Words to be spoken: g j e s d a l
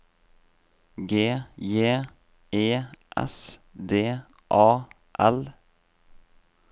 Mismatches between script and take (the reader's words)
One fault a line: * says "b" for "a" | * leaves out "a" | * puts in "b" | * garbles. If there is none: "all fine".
all fine